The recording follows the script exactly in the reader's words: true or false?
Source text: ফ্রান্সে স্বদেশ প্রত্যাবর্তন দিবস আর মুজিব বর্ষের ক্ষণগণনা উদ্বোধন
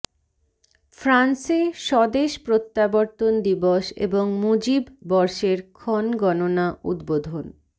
false